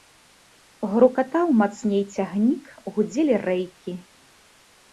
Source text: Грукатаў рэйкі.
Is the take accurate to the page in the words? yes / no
no